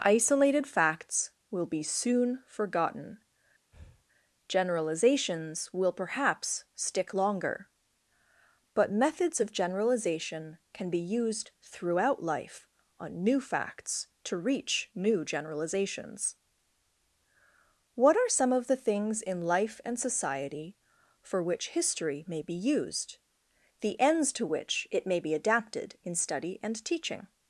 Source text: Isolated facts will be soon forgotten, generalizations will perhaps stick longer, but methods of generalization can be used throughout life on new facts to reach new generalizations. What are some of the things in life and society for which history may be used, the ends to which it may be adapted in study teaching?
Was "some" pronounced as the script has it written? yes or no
yes